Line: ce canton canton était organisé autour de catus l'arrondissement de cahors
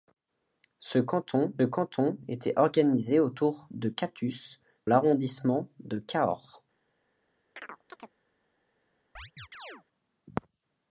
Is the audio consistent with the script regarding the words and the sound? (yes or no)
no